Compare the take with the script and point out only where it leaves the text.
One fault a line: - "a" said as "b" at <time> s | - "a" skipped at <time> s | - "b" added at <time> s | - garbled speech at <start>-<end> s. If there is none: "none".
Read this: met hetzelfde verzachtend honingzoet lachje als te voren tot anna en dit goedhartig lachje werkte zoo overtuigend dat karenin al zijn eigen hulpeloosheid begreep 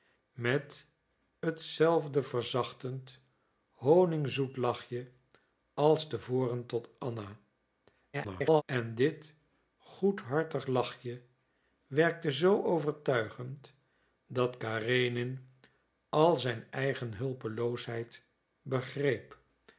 - garbled speech at 8.1-8.6 s